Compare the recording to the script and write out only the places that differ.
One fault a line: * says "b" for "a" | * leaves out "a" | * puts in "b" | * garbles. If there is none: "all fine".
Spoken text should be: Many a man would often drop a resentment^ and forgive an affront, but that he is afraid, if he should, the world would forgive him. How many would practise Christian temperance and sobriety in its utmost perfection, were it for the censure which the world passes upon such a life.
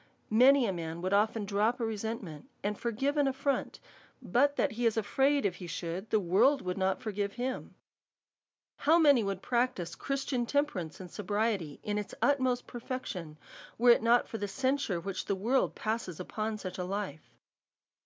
* puts in "not"
* puts in "not"